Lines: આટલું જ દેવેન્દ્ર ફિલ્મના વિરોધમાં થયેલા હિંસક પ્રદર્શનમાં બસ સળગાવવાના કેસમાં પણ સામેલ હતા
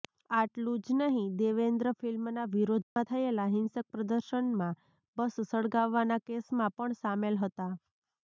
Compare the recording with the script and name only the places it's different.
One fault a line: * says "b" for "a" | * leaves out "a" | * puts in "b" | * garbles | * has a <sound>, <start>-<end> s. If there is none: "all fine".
* puts in "નહીં"
* has a dropout, 2.8-3.0 s